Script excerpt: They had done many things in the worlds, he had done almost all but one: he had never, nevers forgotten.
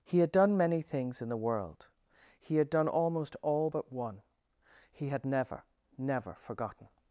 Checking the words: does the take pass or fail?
fail